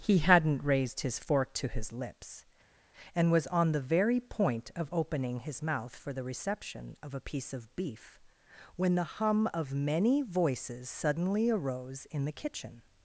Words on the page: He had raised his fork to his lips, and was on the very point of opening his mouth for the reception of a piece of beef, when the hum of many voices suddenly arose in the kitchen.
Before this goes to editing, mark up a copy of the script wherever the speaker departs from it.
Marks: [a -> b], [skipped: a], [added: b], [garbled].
He [had -> hadn't] raised his fork to his lips, and was on the very point of opening his mouth for the reception of a piece of beef, when the hum of many voices suddenly arose in the kitchen.